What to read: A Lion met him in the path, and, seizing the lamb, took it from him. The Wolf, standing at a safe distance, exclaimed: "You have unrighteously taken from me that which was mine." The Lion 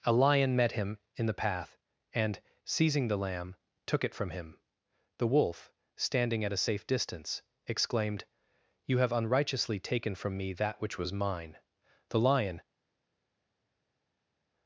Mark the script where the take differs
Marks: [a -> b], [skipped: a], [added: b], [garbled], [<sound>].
A Lion met him in the path, and, seizing the lamb, took it from him. The Wolf, standing at a safe distance, exclaimed: "You have unrighteously taken from me that which was mine." The Lion